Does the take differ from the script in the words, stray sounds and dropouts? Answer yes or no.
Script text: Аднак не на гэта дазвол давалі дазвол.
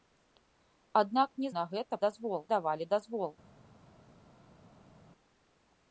no